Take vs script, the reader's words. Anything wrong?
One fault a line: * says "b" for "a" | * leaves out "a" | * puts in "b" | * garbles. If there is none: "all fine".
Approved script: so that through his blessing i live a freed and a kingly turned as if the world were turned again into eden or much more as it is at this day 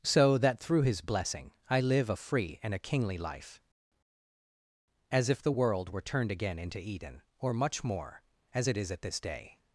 * says "free" for "freed"
* says "life" for "turned"